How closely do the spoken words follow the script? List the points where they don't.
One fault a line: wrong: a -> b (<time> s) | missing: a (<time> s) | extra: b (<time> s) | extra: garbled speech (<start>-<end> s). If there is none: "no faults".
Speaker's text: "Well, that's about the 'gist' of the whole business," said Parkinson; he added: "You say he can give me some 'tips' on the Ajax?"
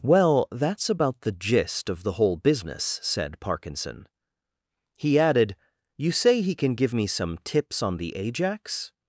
no faults